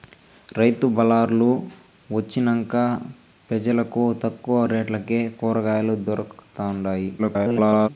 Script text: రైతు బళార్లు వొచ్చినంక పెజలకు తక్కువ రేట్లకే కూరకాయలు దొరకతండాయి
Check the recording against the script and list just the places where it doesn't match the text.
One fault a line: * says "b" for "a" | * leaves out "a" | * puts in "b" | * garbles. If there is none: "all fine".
* garbles